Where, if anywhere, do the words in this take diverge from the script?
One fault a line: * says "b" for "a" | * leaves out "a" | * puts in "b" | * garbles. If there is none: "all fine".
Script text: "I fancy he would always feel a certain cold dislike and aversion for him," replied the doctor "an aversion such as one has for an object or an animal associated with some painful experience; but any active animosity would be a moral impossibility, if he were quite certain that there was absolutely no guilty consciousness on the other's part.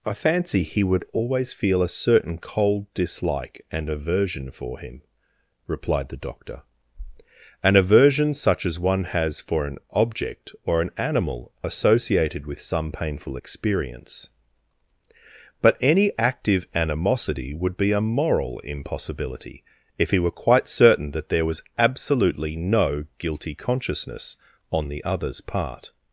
all fine